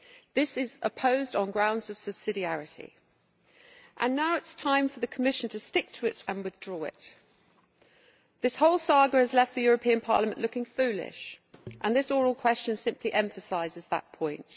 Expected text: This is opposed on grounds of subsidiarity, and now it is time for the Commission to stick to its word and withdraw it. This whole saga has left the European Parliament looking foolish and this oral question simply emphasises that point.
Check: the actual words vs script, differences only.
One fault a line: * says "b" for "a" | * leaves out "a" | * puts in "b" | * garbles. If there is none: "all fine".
* leaves out "word"